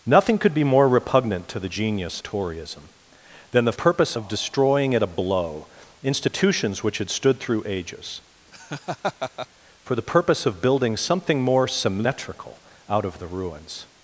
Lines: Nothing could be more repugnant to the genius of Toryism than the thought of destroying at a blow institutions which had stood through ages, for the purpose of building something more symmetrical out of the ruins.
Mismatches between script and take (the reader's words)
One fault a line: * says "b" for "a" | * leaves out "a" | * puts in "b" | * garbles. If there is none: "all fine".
* leaves out "of"
* says "purpose" for "thought"